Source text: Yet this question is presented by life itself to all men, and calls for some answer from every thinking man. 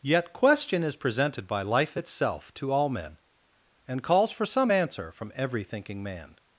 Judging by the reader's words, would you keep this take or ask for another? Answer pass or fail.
fail